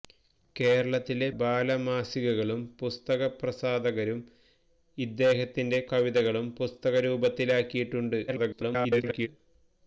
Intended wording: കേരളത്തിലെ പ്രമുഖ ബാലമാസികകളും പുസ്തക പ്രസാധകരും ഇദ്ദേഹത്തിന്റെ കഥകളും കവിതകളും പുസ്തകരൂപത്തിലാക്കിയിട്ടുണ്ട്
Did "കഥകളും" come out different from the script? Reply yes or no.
yes